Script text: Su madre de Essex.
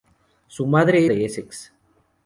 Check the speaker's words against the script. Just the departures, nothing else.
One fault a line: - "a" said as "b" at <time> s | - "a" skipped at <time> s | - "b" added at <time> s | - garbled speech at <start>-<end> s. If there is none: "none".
none